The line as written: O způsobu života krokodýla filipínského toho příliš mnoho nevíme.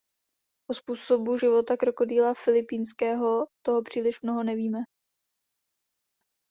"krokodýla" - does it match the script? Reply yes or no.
yes